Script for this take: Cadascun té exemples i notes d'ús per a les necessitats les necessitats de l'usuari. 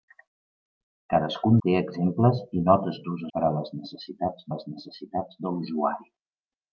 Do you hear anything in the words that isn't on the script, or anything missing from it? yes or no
no